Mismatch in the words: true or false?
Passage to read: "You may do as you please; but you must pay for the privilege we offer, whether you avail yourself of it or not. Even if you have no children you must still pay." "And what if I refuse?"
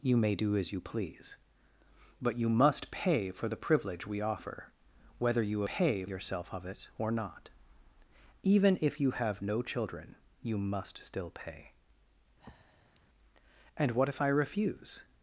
true